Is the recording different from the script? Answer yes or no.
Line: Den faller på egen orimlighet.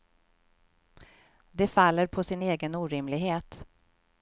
yes